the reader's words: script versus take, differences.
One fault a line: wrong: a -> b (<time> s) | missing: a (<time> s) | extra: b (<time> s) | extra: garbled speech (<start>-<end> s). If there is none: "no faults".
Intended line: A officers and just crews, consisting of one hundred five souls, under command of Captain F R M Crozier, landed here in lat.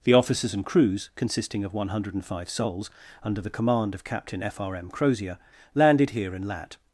wrong: A -> The (0.0 s)
missing: just (0.7 s)
extra: the (3.4 s)